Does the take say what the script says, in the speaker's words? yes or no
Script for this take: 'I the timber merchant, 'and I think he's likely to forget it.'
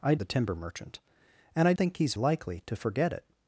yes